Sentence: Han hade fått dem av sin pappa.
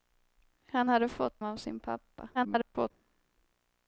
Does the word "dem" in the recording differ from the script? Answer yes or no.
yes